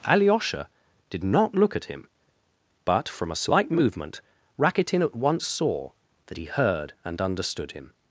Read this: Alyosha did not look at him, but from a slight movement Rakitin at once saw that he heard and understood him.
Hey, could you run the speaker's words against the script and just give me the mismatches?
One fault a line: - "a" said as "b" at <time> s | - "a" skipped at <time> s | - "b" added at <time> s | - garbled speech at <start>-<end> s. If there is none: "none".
none